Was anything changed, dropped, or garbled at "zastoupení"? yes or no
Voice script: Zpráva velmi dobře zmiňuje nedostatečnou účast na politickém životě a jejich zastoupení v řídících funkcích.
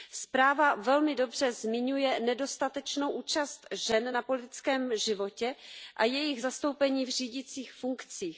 no